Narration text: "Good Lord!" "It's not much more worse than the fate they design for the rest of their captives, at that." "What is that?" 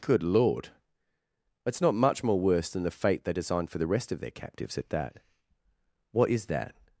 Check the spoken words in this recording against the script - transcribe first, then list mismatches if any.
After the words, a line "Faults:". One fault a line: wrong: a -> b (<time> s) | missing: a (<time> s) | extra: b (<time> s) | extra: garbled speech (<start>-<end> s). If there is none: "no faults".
"Good Lord!" "It's not much more worse than the fate they designed for the rest of their captives, at that." "What is that?"
Faults:
wrong: design -> designed (3.3 s)